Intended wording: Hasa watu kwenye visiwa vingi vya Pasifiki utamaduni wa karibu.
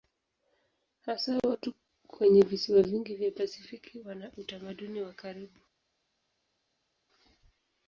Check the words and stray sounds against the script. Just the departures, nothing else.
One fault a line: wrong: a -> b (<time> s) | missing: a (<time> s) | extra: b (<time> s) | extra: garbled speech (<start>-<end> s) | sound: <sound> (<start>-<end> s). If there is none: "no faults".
extra: wana (4.0 s)